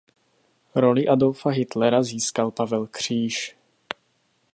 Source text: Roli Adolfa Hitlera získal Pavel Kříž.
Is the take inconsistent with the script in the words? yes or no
no